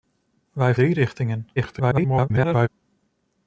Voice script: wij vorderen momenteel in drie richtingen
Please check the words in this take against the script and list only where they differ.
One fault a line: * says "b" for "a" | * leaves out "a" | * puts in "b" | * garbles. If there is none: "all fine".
* leaves out "vorderen momenteel in"
* garbles